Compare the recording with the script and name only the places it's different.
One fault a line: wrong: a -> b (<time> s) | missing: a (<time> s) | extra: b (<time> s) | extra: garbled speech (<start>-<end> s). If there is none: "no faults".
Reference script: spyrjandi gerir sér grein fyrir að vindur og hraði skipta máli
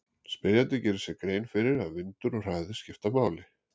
no faults